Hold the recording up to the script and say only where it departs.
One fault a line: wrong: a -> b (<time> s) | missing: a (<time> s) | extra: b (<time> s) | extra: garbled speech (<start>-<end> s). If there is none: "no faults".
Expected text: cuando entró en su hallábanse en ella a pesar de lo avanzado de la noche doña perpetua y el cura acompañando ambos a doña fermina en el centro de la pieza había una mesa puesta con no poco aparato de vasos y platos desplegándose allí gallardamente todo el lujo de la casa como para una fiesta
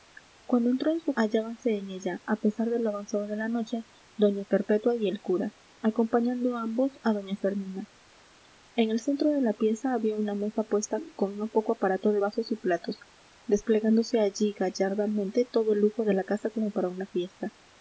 no faults